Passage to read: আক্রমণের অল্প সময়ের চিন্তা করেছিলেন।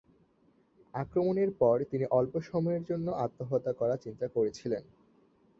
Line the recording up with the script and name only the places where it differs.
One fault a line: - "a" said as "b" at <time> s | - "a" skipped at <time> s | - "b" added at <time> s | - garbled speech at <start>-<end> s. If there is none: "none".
- "পর তিনি" added at 1.6 s
- "জন্য আত্মহত্যা করার" added at 2.8 s